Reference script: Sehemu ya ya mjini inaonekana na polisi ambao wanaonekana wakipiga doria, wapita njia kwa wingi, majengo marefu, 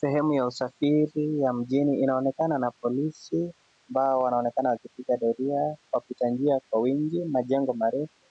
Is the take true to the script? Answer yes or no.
no